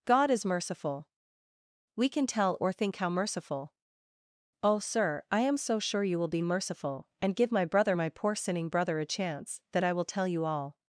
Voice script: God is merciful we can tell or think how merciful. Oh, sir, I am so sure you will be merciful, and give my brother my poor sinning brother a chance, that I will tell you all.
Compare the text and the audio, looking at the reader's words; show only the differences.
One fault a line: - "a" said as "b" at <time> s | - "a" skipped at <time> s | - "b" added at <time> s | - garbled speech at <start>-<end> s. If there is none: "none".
none